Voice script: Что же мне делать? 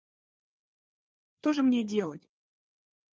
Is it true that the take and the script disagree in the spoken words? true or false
false